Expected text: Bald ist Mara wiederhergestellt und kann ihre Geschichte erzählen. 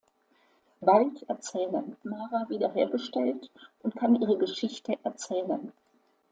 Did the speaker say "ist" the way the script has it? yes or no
no